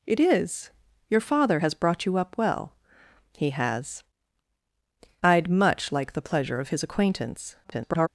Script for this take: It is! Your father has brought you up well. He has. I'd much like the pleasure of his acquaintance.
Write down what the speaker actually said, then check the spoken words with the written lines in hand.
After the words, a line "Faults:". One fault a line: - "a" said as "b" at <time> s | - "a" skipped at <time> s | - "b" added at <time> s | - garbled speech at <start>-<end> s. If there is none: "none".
It is! Your father has brought you up well. He has. I'd much like the pleasure of his acquaintance. [garbled]
Faults:
- garbled speech at 7.6-8.1 s